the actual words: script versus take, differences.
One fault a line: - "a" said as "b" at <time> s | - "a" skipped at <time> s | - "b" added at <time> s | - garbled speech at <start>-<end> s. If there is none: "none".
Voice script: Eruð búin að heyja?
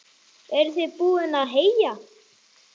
- "þið" added at 0.8 s